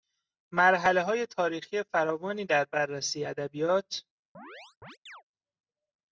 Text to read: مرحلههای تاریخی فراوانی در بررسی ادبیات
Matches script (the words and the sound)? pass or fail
fail